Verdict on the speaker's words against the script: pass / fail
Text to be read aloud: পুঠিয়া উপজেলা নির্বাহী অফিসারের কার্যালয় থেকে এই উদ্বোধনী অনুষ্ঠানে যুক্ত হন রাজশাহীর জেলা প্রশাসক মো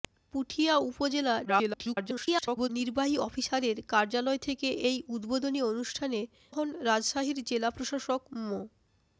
fail